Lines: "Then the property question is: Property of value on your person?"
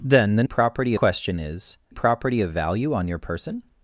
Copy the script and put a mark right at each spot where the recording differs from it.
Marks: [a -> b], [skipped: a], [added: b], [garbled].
"Then the property question is: Property of value on your person?"